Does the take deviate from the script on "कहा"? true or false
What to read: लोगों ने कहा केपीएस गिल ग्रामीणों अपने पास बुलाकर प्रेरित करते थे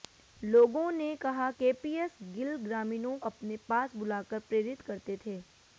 false